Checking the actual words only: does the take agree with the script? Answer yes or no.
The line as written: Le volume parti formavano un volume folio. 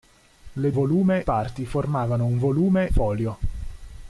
yes